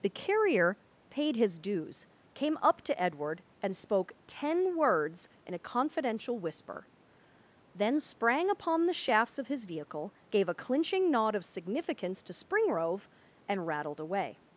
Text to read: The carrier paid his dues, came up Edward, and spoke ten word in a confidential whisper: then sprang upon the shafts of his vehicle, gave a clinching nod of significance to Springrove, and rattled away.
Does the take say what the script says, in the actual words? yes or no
no